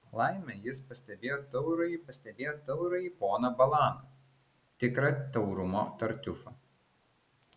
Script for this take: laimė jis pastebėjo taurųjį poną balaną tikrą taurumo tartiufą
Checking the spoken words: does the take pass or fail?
fail